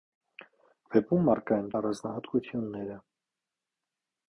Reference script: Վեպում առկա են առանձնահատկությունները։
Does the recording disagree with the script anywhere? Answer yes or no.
no